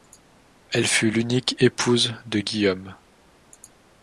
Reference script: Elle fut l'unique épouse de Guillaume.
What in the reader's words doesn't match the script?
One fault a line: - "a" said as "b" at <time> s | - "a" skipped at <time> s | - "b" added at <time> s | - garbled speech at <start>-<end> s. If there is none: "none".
none